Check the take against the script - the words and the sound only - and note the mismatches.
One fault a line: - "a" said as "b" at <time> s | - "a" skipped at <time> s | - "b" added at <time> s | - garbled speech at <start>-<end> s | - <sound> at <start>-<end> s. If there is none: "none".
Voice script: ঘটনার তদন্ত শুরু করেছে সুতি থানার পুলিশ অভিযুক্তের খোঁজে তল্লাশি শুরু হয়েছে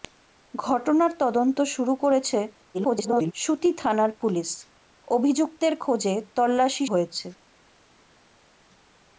- garbled speech at 2.7-3.3 s
- "শুরু" skipped at 6.9 s